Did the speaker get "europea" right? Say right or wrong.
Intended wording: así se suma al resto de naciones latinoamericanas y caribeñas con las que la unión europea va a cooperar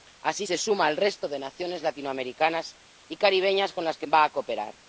wrong